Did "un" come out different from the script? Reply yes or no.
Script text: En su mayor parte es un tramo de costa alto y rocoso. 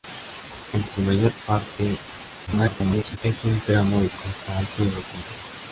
no